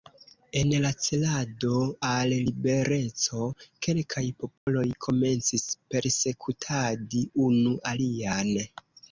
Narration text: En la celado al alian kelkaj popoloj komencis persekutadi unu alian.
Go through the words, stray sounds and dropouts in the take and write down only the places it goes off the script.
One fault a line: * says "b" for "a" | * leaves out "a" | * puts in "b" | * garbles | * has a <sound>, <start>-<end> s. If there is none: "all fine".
* says "libereco" for "alian"
* has a dropout, 4.6-4.7 s